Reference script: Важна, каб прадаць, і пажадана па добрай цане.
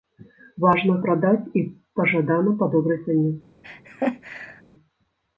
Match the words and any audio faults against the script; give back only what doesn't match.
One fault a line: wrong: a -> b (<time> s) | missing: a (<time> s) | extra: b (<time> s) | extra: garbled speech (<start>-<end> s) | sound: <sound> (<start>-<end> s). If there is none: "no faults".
missing: каб (0.9 s)
sound: laugh (3.6-4.6 s)